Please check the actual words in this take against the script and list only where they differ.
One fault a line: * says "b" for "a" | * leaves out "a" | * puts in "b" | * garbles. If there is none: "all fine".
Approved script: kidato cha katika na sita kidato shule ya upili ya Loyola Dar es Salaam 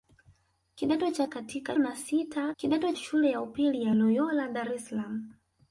all fine